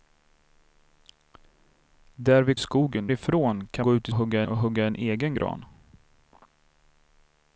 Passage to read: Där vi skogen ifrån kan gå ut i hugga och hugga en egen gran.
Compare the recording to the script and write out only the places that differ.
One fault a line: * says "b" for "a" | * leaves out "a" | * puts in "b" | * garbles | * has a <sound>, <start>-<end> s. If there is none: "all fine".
all fine